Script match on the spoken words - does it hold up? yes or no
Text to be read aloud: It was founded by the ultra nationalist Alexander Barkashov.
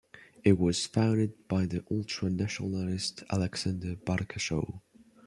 yes